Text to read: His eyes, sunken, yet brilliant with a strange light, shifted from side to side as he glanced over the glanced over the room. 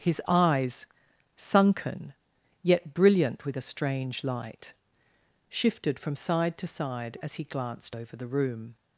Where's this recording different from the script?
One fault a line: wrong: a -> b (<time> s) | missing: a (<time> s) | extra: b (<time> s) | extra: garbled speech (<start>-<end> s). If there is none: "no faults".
missing: glanced over the (8.3 s)